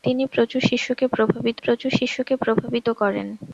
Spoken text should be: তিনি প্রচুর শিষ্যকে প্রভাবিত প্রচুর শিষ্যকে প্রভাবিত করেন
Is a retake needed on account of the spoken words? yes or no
no